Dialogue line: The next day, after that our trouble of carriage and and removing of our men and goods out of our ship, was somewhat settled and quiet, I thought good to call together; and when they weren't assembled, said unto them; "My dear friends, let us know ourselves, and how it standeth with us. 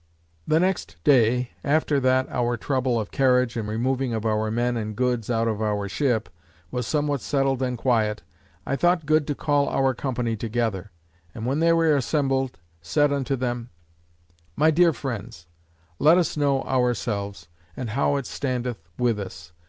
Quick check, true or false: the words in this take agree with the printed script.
false